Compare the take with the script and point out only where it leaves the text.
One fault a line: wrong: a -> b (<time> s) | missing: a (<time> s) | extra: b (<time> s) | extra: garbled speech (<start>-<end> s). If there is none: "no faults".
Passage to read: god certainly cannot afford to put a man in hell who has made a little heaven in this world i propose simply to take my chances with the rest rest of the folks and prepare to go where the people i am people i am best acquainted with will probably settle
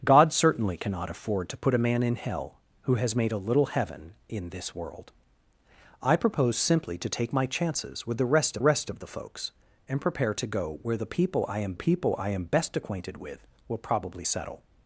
no faults